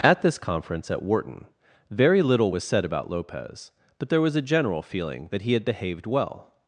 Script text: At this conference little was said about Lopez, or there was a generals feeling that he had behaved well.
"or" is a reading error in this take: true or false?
true